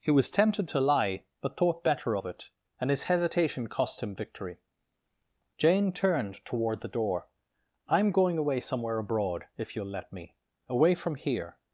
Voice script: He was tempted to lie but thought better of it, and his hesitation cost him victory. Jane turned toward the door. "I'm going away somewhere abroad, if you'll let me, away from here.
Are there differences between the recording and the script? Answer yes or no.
no